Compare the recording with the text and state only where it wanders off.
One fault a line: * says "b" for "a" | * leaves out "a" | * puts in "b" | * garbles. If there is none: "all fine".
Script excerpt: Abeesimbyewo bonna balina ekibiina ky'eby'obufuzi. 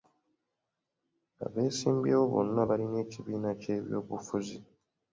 all fine